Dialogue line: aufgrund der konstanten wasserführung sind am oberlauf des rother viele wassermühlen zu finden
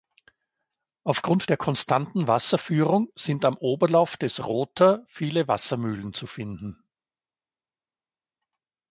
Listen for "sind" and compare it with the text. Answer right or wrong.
right